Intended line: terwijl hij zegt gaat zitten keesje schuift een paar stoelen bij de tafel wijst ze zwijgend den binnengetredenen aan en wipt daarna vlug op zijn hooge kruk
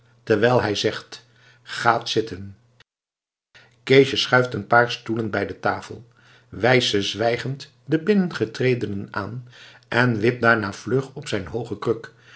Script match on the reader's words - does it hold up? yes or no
yes